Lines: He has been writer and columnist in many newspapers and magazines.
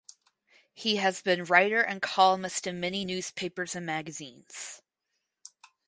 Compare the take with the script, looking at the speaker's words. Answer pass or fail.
pass